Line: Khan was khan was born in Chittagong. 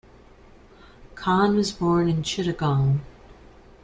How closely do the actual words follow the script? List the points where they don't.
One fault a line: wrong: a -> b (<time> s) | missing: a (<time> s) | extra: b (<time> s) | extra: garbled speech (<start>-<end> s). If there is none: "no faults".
missing: khan was (1.7 s)